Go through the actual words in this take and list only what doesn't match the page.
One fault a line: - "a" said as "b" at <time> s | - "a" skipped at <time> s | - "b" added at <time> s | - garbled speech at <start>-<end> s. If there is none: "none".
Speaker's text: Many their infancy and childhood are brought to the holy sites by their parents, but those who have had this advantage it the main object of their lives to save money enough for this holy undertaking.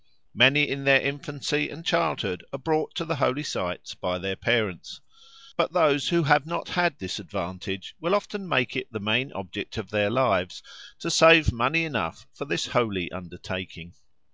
- "in" added at 0.6 s
- "not" added at 6.5 s
- "will often make" added at 8.0 s